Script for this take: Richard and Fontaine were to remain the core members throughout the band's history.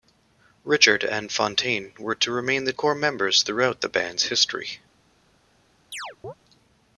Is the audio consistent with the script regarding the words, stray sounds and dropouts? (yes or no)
no